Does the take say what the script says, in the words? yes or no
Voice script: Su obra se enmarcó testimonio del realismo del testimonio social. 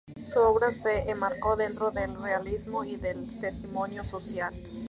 no